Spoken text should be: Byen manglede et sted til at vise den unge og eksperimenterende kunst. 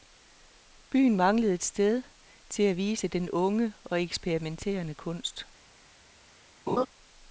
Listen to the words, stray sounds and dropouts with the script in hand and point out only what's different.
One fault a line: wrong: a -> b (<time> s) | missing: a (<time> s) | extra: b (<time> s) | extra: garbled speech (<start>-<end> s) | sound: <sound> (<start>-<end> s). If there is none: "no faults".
sound: laugh (6.7-6.9 s)